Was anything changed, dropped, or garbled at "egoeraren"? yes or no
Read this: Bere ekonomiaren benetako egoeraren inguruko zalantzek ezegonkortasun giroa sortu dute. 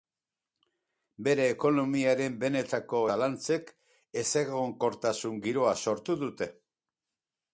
yes